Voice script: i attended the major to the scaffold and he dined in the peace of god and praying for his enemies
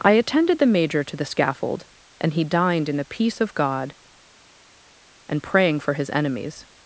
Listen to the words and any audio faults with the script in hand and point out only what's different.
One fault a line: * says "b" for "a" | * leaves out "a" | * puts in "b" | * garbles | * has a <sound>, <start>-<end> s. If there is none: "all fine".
all fine